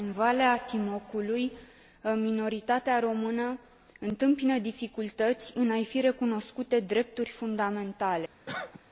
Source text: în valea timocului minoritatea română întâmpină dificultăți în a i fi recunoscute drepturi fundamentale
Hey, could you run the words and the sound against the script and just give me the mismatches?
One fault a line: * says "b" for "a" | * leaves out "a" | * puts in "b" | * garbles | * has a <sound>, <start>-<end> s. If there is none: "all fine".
* has a cough, 8.5-8.8 s